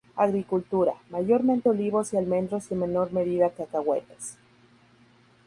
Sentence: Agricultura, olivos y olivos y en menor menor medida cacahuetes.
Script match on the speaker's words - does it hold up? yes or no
no